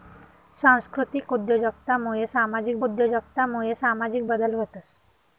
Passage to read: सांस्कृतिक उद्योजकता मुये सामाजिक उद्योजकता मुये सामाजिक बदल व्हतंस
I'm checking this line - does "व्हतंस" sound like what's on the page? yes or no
yes